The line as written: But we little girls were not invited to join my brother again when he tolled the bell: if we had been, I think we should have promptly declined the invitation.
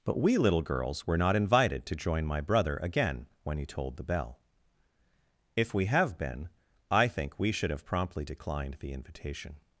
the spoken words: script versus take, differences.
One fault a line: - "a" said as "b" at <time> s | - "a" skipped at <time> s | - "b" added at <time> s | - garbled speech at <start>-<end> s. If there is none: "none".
- "had" said as "have" at 5.8 s